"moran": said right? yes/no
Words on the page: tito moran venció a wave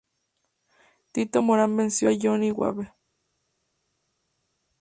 yes